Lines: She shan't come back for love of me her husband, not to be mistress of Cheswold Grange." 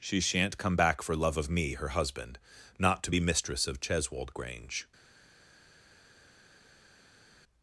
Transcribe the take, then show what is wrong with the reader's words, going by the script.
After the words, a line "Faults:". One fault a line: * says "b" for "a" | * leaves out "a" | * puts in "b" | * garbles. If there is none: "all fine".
She shan't come back for love of me her husband, not to be mistress of Cheswold Grange."
Faults:
all fine